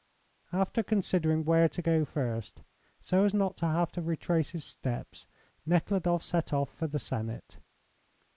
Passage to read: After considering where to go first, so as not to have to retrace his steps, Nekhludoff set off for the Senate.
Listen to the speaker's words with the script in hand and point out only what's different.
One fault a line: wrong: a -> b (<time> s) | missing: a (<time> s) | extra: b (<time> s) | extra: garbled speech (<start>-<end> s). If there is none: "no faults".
no faults